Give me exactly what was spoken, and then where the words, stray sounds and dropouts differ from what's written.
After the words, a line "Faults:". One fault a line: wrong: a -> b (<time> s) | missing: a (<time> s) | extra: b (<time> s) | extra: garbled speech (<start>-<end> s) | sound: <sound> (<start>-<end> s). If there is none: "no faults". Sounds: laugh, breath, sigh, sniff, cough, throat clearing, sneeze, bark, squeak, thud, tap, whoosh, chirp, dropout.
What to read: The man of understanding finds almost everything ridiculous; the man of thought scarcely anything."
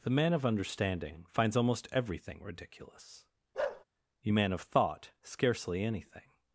The man of understanding finds almost everything ridiculous; you man of thought scarcely anything."
Faults:
sound: bark (3.5-3.8 s)
wrong: the -> you (4.2 s)